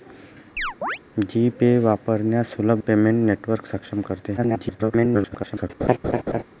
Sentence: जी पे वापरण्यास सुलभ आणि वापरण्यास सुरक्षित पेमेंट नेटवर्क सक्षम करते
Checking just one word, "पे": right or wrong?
right